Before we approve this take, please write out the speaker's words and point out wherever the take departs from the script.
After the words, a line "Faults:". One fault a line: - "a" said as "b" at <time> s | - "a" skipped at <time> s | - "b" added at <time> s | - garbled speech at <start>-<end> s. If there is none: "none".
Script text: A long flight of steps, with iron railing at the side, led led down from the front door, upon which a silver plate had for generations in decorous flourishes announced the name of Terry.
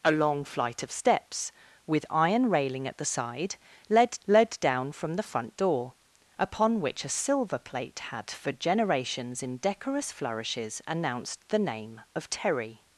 A long flight of steps, with iron railing at the side, led led down from the front door, upon which a silver plate had for generations in decorous flourishes announced the name of Terry.
Faults:
none